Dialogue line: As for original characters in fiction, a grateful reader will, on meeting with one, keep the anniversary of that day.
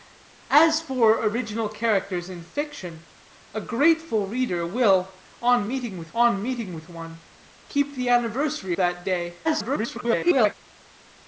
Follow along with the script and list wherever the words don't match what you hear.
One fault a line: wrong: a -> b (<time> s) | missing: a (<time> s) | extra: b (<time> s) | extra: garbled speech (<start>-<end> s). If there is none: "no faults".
extra: on meeting with (6.2 s)
missing: of (8.8 s)
extra: garbled speech (9.4-10.5 s)